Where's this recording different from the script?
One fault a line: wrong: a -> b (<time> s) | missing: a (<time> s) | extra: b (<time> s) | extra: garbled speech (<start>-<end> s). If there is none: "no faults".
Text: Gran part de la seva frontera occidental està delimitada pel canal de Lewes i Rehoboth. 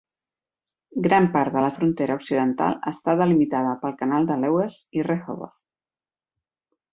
missing: seva (1.7 s)